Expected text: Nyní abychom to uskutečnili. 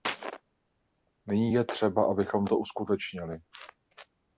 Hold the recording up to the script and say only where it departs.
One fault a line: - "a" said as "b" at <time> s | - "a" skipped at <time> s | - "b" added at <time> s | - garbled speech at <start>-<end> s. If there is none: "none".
- "je třeba" added at 1.5 s